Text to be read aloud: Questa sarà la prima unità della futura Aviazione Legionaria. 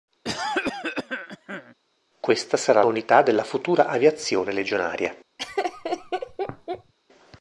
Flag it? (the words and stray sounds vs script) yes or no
yes